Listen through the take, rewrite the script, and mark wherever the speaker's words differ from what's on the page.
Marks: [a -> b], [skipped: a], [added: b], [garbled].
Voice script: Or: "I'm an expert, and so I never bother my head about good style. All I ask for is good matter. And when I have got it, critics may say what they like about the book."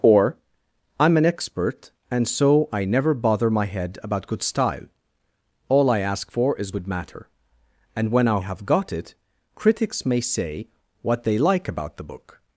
Or: "I'm an expert, and so I never bother my head about good style. All I ask for is good matter. And when I have got it, critics may say what they like about the book."